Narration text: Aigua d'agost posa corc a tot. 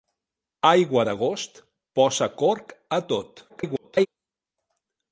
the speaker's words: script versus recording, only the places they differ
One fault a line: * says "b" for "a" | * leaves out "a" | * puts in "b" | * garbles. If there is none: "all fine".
* garbles